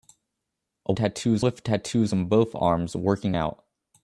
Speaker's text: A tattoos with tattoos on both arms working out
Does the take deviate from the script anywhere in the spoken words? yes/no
no